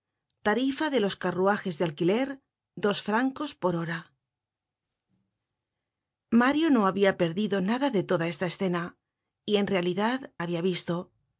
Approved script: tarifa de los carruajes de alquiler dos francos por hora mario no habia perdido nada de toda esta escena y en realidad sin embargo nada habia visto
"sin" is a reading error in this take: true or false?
true